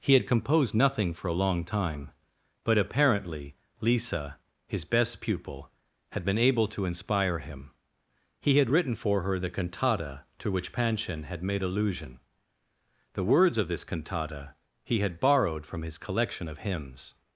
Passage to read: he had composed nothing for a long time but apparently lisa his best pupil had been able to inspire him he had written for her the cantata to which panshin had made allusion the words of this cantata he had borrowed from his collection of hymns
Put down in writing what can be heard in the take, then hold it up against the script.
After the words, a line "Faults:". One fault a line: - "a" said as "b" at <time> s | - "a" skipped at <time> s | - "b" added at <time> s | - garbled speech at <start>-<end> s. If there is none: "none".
he had composed nothing for a long time but apparently lisa his best pupil had been able to inspire him he had written for her the cantata to which panshin had made allusion the words of this cantata he had borrowed from his collection of hymns
Faults:
none